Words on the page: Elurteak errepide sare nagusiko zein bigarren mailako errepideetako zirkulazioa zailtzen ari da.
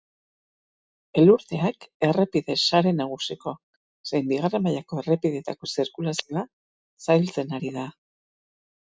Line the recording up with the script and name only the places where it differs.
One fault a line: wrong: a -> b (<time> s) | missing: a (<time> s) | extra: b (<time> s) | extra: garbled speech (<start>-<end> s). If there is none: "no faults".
no faults